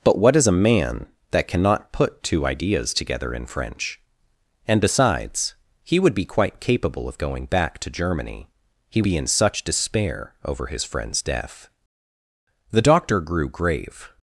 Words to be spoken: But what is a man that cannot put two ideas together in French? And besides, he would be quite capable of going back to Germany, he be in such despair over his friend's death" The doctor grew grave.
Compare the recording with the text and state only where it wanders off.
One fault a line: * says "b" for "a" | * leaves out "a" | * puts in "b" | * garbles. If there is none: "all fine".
all fine